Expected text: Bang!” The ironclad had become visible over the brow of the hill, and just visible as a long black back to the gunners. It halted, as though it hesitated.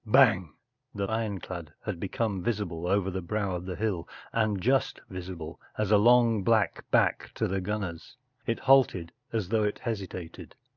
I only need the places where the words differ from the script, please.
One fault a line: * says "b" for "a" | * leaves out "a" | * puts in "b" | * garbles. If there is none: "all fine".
all fine